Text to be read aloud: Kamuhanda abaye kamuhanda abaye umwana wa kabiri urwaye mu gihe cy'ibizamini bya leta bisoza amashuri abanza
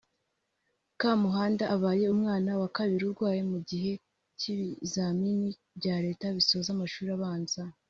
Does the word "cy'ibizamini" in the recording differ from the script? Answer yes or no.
no